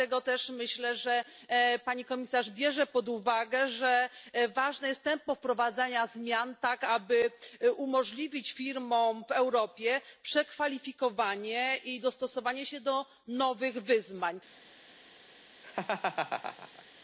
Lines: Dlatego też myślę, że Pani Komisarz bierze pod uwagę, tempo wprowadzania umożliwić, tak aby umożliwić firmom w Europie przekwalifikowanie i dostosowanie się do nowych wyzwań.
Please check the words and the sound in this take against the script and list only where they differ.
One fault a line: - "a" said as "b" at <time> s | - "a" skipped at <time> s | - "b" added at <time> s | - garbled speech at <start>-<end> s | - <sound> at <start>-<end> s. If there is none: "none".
- "że ważne jest" added at 3.7 s
- "umożliwić" said as "zmian" at 6.1 s
- laugh at 15.6-16.8 s